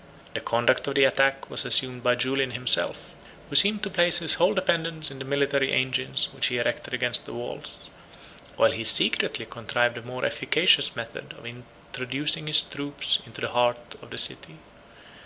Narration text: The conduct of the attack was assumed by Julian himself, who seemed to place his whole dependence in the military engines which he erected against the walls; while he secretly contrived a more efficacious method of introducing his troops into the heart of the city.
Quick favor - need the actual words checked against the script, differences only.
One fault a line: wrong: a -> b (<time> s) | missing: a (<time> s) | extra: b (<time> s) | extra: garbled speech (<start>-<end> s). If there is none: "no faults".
no faults